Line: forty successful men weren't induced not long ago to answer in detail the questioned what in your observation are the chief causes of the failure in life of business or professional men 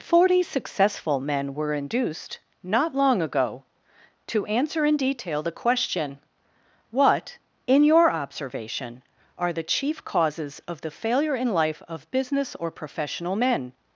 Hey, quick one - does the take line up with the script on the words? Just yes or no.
no